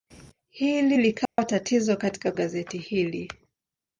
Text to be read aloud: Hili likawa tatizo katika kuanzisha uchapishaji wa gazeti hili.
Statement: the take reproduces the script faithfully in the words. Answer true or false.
false